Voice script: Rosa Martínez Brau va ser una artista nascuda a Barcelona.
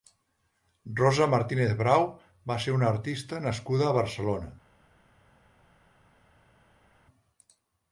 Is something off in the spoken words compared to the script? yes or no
no